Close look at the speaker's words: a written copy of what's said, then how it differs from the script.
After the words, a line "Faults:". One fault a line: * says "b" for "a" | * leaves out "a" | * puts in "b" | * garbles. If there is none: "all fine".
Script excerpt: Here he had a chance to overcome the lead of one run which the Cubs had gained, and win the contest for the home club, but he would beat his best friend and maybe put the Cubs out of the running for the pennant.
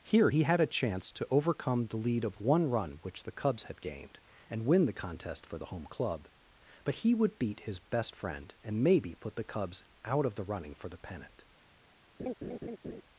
Here he had a chance to overcome the lead of one run which the Cubs had gained, and win the contest for the home club, but he would beat his best friend and maybe put the Cubs out of the running for the pennant.
Faults:
all fine